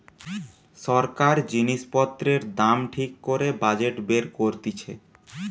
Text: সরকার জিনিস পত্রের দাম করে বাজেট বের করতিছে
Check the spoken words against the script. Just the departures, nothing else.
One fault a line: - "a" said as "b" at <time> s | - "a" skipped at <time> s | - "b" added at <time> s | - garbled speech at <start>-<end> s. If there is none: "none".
- "ঠিক" added at 2.9 s